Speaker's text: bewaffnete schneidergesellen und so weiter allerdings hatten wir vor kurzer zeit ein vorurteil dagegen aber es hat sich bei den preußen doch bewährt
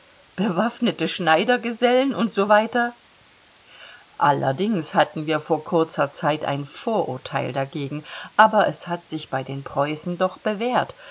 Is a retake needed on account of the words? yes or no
no